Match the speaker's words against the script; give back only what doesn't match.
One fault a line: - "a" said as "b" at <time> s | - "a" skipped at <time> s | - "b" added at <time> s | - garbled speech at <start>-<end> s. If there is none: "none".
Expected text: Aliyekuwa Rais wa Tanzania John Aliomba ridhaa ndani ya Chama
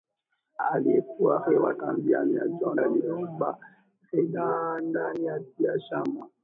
none